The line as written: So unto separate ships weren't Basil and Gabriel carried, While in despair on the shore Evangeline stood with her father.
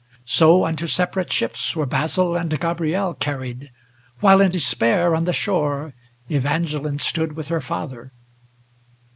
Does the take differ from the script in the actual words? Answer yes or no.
yes